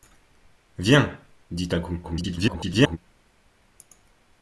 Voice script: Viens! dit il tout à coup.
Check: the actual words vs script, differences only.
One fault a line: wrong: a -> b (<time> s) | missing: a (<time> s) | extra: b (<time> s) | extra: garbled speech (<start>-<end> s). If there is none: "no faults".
missing: il tout (1.7 s)
extra: garbled speech (2.0-3.0 s)